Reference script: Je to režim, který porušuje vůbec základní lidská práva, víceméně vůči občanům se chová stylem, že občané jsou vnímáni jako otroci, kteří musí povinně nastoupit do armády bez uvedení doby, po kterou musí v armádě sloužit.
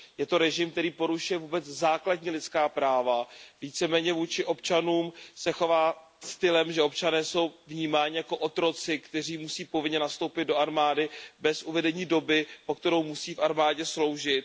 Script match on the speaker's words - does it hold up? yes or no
yes